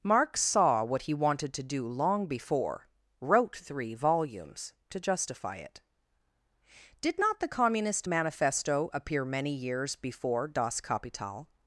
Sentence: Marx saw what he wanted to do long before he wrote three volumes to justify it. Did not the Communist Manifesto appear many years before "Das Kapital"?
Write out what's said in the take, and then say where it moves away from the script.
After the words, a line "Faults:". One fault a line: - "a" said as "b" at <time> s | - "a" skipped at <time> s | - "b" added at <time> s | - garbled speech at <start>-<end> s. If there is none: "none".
Marx saw what he wanted to do long before wrote three volumes to justify it. Did not the Communist Manifesto appear many years before "Das Kapital"?
Faults:
- "he" skipped at 2.9 s